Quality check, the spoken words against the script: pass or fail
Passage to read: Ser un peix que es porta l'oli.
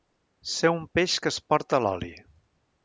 pass